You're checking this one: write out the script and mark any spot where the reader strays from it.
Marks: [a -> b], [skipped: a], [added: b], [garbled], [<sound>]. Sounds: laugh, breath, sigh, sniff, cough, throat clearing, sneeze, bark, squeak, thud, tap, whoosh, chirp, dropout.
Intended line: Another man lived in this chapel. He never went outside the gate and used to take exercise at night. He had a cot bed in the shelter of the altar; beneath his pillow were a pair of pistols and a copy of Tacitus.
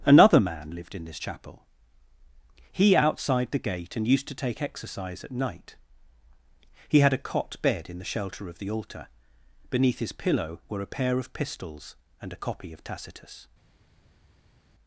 Another man lived in this chapel. He [skipped: never went] outside the gate and used to take exercise at night. He had a cot bed in the shelter of the altar; beneath his pillow were a pair of pistols and a copy of Tacitus.